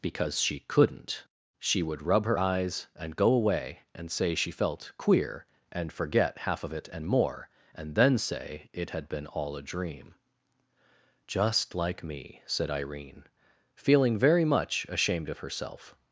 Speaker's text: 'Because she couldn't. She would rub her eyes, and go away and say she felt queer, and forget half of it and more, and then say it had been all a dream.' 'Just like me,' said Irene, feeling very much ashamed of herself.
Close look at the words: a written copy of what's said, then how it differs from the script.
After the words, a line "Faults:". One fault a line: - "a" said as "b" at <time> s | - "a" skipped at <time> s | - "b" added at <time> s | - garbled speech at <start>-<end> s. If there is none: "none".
'Because she couldn't. She would rub her eyes, and go away and say she felt queer, and forget half of it and more, and then say it had been all a dream.' 'Just like me,' said Irene, feeling very much ashamed of herself.
Faults:
none